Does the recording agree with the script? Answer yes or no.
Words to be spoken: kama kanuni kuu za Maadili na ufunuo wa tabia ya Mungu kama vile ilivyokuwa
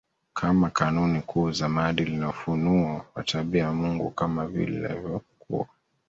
yes